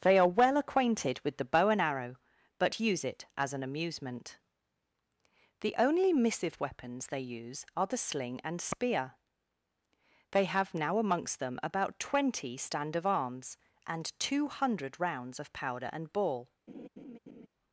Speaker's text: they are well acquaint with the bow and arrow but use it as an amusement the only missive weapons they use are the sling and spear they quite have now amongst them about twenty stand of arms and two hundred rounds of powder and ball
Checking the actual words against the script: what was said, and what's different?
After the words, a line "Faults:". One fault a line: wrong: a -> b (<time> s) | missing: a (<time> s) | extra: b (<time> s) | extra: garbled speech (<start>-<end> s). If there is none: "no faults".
they are well acquainted with the bow and arrow but use it as an amusement the only missive weapons they use are the sling and spear they have now amongst them about twenty stand of arms and two hundred rounds of powder and ball
Faults:
wrong: acquaint -> acquainted (0.6 s)
missing: quite (10.5 s)